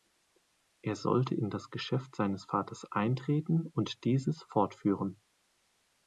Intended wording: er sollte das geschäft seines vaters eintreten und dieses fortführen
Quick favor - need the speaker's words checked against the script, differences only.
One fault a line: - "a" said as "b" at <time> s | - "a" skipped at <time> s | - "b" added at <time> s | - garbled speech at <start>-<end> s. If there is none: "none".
- "in" added at 1.4 s